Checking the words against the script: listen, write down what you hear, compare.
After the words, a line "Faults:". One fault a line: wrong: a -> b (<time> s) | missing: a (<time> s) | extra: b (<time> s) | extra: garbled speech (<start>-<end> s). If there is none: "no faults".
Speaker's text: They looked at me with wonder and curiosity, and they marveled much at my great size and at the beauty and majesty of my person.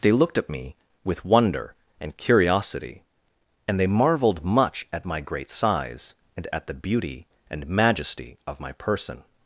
They looked at me with wonder and curiosity, and they marveled much at my great size and at the beauty and majesty of my person.
Faults:
no faults